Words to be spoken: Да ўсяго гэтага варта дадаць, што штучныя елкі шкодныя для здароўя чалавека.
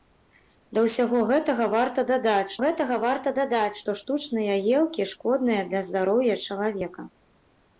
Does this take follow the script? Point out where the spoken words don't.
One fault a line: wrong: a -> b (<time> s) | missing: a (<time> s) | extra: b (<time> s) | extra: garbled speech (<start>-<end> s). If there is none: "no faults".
extra: гэтага варта дадаць (2.6 s)